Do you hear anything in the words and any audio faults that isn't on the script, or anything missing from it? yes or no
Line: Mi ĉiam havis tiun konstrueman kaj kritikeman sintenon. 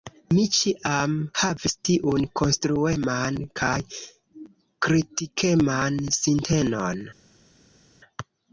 no